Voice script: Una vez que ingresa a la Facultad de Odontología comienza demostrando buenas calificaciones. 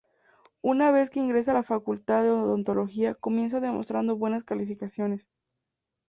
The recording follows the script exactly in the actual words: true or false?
true